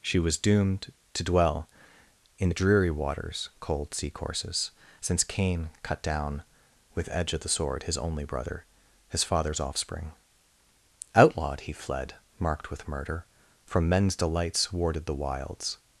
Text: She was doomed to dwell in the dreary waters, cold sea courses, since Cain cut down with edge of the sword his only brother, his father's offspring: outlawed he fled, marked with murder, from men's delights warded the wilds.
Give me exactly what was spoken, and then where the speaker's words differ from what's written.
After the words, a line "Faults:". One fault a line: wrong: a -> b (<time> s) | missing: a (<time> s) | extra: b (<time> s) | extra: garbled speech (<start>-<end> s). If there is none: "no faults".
She was doomed to dwell in the dreary waters, cold sea courses, since Cain cut down with edge of the sword his only brother, his father's offspring: outlawed he fled, marked with murder, from men's delights warded the wilds.
Faults:
no faults